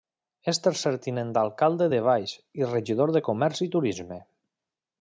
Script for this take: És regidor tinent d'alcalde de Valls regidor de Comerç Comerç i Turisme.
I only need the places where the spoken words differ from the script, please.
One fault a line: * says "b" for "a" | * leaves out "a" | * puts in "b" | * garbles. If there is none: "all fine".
* says "tercer" for "regidor"
* puts in "i"
* leaves out "Comerç"